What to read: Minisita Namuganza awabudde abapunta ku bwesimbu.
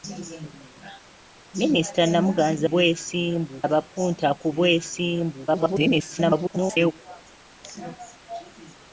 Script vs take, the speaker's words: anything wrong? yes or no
yes